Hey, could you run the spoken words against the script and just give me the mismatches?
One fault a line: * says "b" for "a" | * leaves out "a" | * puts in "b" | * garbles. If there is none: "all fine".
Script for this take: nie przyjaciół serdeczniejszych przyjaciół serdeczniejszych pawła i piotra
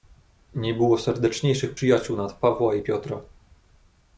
* says "było" for "przyjaciół"
* says "nad" for "serdeczniejszych"